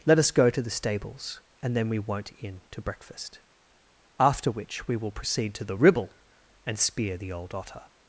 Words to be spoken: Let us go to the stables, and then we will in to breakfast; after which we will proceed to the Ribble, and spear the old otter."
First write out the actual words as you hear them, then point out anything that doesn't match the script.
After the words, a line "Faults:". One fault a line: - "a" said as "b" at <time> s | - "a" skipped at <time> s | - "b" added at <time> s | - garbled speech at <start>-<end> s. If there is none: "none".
Let us go to the stables, and then we won't in to breakfast; after which we will proceed to the Ribble, and spear the old otter."
Faults:
- "will" said as "won't" at 2.0 s